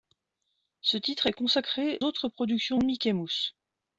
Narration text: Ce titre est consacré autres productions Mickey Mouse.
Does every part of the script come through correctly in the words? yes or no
yes